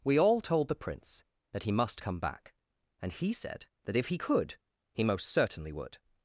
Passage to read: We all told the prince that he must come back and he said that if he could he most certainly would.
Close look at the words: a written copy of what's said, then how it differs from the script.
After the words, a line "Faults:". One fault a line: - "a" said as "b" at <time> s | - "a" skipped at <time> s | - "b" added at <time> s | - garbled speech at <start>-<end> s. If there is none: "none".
We all told the prince that he must come back and he said that if he could he most certainly would.
Faults:
none